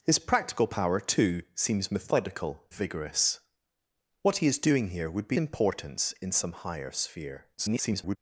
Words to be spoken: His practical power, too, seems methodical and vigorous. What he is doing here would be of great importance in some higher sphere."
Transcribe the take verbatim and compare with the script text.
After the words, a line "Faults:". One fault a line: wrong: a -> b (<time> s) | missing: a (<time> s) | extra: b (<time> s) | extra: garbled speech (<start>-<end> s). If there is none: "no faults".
His practical power, too, seems methodical vigorous. What he is doing here would be importance in some higher sphere." [garbled]
Faults:
missing: and (2.7 s)
missing: of great (5.4 s)
extra: garbled speech (7.6-8.2 s)